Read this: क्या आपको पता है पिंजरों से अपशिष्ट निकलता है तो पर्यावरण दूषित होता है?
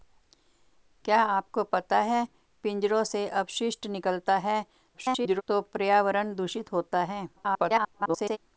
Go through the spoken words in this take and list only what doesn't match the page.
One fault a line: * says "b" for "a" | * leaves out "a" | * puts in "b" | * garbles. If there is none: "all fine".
* garbles
* garbles